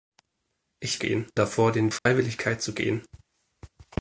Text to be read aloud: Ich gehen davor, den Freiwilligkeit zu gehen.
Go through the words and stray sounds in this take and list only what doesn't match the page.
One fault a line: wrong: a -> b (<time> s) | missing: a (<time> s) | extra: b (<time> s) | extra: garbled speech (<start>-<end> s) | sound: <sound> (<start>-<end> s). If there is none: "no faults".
sound: dropout (2.0-2.1 s)